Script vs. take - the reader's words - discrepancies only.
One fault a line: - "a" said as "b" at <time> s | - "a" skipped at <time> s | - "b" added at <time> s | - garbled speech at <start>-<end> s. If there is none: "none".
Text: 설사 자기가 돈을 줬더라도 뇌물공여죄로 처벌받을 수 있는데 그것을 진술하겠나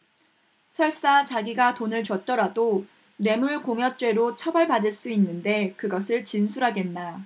none